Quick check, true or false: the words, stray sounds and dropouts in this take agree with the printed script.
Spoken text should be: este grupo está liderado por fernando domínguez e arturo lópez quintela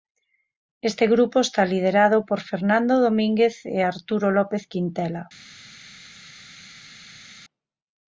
true